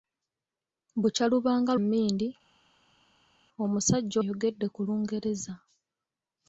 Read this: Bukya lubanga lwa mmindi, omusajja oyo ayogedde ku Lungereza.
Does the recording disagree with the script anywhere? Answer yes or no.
yes